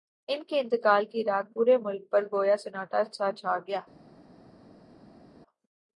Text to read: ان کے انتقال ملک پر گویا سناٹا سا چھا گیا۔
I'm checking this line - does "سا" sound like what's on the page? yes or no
yes